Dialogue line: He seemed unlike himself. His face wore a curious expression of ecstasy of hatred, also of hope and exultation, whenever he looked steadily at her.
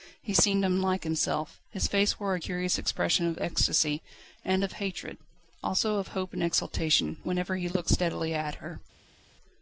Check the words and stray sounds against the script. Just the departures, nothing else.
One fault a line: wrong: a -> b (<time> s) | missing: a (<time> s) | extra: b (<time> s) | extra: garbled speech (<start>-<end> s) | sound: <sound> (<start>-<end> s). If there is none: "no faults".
extra: and (4.4 s)